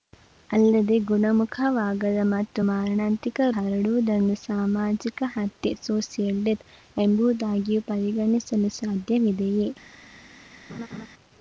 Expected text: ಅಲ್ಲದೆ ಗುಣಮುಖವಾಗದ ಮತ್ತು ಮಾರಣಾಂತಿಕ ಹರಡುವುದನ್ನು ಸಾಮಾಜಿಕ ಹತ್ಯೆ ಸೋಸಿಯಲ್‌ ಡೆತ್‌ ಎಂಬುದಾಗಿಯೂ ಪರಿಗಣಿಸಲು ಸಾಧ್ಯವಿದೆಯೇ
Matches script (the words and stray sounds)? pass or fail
fail